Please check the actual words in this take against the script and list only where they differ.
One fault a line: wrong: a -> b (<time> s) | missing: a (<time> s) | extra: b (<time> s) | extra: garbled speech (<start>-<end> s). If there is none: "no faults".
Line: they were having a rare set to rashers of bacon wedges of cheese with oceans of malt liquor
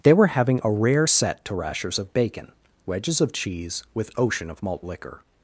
wrong: oceans -> ocean (4.2 s)